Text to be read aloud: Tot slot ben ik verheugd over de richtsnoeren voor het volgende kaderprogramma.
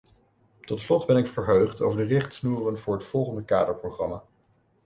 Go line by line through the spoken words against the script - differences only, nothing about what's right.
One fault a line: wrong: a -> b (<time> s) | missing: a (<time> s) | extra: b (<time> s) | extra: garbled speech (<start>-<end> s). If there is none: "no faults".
no faults